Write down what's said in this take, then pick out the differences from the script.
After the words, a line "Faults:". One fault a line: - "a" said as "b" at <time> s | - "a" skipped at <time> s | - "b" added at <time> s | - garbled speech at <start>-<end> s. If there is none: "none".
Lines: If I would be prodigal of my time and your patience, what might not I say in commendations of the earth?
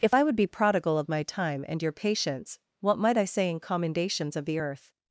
If I would be prodigal of my time and your patience, what might I say in commendations of the earth?
Faults:
- "not" skipped at 3.2 s